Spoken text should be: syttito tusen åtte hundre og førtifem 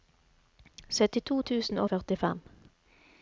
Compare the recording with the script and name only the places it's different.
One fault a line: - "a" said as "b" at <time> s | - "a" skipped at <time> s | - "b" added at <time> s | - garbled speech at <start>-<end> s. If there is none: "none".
- "åtte hundre" skipped at 1.8 s